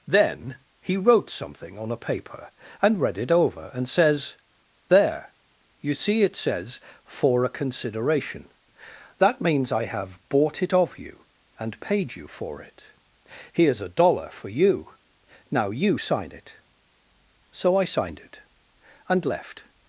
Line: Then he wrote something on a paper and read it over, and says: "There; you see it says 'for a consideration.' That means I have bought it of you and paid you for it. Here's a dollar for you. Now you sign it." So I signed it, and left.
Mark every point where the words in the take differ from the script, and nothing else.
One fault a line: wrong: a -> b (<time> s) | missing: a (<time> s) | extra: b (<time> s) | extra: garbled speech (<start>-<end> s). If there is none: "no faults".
no faults